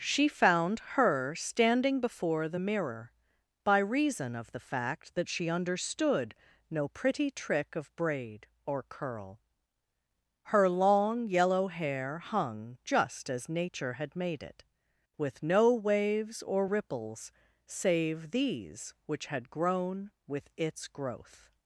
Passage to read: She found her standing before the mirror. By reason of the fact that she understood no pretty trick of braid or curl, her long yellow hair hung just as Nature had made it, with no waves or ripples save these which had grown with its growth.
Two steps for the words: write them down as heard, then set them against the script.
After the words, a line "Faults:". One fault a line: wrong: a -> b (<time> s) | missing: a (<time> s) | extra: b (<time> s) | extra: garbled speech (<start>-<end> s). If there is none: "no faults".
She found her standing before the mirror. By reason of the fact that she understood no pretty trick of braid or curl, her long yellow hair hung just as Nature had made it, with no waves or ripples save these which had grown with its growth.
Faults:
no faults